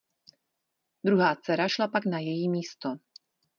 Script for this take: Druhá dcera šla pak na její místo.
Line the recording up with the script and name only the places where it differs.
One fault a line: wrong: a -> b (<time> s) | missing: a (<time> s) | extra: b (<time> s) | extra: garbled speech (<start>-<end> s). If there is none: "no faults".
no faults